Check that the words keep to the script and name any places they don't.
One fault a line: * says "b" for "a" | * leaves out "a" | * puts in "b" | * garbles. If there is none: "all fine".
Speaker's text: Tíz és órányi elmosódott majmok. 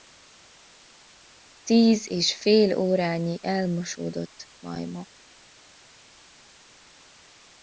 * puts in "fél"